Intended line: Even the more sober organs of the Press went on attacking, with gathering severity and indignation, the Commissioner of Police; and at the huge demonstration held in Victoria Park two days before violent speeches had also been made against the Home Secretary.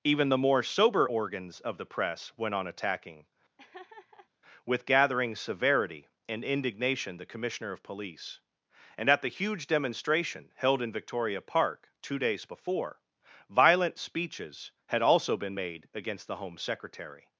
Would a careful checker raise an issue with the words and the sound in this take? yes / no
yes